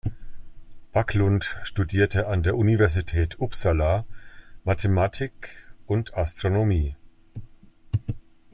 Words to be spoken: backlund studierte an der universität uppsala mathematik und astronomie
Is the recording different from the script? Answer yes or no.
no